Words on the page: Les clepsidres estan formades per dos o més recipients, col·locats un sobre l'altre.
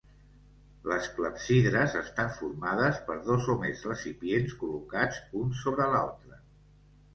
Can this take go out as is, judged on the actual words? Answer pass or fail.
pass